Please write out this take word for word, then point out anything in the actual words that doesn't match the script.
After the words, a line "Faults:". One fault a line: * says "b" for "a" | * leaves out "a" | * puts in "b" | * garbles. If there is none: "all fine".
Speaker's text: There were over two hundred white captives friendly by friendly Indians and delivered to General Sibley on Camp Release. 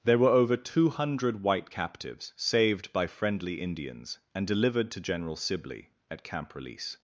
There were over two hundred white captives saved by friendly Indians and delivered to General Sibley at Camp Release.
Faults:
* says "saved" for "friendly"
* says "at" for "on"